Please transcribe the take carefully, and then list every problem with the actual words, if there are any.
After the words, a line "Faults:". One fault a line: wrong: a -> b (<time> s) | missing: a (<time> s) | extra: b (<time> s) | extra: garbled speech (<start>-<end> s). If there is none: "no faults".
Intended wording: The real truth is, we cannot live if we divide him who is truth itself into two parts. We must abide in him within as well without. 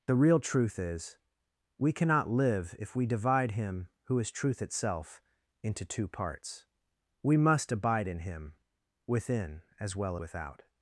The real truth is, we cannot live if we divide him who is truth itself into two parts. We must abide in him within as well without.
Faults:
no faults